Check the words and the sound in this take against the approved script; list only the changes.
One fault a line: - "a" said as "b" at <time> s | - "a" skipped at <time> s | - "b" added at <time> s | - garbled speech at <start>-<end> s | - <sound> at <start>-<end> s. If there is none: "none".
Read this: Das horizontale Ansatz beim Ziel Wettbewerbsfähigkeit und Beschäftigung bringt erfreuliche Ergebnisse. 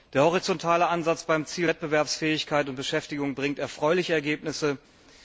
- "Das" said as "Der" at 0.1 s